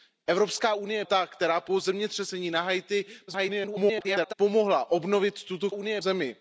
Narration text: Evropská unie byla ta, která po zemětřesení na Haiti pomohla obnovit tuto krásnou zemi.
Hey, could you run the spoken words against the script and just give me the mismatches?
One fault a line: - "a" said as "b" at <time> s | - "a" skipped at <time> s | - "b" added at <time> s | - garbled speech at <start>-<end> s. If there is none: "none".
- "byla" skipped at 1.1 s
- garbled speech at 3.3-4.3 s
- "krásnou" said as "unie" at 5.7 s